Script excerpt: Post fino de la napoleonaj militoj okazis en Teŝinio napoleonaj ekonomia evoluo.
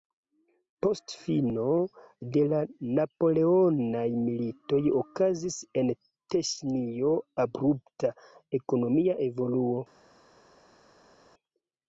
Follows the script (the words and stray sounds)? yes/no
no